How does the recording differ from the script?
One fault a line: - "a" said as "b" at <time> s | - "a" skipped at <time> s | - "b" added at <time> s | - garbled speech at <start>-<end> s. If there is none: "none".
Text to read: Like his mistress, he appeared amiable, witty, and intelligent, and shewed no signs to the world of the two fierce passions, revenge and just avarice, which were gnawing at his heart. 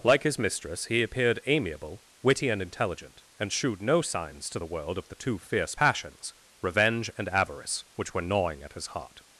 - "just" skipped at 7.3 s